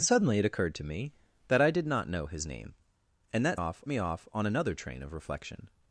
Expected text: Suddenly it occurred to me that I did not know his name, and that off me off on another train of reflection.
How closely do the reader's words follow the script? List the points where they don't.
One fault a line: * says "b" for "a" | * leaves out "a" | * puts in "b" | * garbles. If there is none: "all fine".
all fine